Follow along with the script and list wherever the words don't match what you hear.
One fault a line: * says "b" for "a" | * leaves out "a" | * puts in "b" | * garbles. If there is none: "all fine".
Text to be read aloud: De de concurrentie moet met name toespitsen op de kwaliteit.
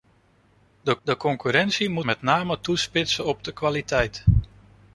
all fine